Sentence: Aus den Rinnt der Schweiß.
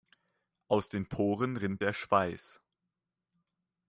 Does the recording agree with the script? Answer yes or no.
no